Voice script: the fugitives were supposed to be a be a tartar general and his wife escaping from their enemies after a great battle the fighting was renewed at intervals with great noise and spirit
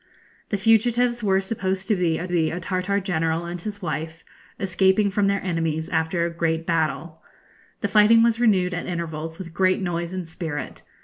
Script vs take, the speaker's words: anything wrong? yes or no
no